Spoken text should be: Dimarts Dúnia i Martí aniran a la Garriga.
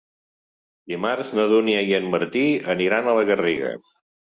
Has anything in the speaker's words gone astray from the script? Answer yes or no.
yes